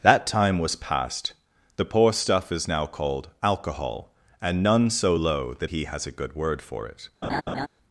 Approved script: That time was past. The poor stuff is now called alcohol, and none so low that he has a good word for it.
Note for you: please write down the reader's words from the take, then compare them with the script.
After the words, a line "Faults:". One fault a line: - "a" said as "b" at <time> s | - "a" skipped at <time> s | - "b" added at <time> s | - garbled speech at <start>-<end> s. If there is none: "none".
That time was past. The poor stuff is now called alcohol, and none so low that he has a good word for it.
Faults:
none